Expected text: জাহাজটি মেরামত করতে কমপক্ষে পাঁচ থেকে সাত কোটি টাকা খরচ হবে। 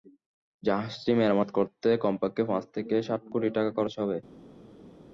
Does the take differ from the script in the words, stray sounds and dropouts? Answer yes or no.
no